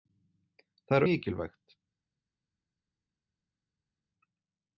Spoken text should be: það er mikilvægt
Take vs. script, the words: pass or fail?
pass